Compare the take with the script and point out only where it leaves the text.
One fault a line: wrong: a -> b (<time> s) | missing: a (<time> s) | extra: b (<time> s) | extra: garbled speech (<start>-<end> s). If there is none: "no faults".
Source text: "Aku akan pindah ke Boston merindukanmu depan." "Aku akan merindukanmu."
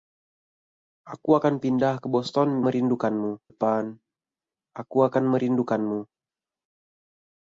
no faults